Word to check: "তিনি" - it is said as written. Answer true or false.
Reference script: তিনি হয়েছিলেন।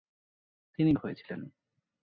true